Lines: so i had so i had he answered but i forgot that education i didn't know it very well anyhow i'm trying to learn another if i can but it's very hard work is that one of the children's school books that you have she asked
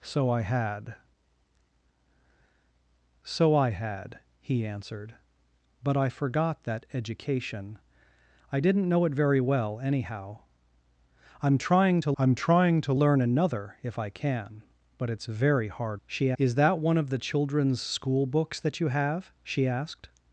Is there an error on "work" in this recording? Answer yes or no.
yes